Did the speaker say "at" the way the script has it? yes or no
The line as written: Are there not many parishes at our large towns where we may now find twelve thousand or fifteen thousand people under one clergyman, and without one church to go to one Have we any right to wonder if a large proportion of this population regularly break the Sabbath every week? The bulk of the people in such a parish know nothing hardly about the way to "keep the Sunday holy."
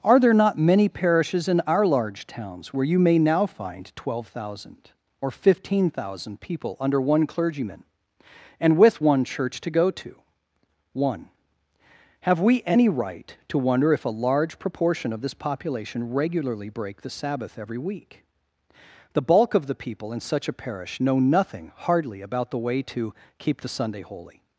no